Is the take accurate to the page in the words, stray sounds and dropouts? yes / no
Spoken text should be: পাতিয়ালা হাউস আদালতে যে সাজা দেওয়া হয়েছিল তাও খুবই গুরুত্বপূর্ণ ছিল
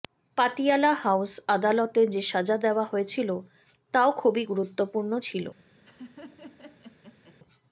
no